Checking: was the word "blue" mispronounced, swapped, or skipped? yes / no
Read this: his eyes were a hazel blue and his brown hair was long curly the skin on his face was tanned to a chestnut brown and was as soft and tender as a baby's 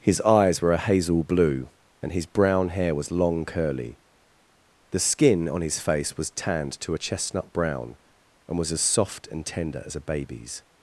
no